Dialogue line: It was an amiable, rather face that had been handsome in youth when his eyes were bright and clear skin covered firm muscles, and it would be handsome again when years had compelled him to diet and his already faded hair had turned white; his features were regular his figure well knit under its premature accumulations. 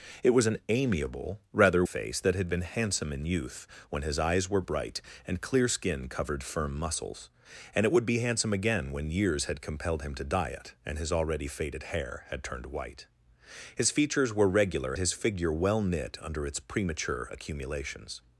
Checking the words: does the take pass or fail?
pass